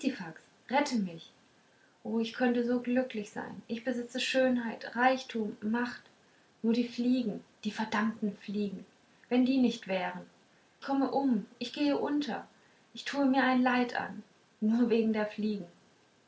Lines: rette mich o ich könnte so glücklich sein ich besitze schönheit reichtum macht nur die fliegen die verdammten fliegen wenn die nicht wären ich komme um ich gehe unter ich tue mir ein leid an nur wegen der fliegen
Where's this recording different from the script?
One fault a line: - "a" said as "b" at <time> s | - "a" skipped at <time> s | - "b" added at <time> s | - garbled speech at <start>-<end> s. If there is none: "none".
- "ich" skipped at 10.3 s